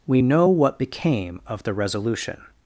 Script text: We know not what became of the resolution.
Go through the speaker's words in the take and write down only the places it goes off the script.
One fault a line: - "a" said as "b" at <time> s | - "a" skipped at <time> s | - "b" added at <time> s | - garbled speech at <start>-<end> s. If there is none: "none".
- "not" skipped at 0.5 s